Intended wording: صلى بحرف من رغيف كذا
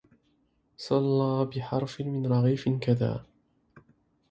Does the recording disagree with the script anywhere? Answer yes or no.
no